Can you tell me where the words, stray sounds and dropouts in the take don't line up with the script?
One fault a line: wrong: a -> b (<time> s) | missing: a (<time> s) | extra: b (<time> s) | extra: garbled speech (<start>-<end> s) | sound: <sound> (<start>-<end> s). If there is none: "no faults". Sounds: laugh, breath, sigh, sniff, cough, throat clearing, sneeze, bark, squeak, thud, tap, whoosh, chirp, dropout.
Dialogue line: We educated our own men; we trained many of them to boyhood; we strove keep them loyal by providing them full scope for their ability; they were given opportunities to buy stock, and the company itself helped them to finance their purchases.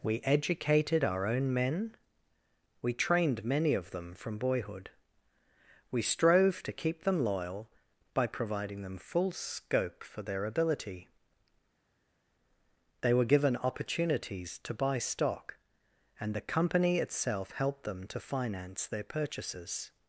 wrong: to -> from (4.2 s)
extra: to (6.6 s)